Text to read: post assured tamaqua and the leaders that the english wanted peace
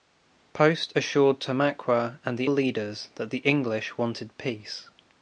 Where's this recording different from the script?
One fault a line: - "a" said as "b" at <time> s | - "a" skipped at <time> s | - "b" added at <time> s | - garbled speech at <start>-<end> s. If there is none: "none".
none